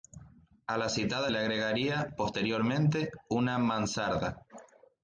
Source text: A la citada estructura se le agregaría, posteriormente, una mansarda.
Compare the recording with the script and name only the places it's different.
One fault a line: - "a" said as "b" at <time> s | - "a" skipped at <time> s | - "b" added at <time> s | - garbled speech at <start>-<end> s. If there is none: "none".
- "estructura se" skipped at 1.3 s